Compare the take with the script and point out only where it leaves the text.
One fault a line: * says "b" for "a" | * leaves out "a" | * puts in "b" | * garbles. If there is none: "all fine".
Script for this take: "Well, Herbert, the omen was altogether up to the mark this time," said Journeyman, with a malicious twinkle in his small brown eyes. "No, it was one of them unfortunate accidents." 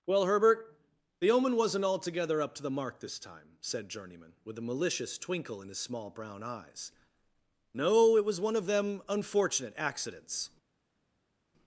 * says "wasn't" for "was"